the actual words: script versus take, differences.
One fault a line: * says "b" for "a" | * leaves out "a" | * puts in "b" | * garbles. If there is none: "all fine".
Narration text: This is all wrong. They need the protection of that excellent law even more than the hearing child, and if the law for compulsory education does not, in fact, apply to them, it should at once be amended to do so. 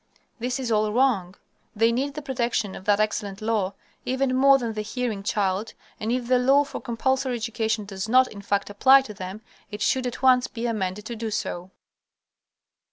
all fine